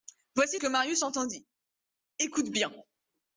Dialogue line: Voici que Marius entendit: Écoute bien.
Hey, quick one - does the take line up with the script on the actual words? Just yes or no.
yes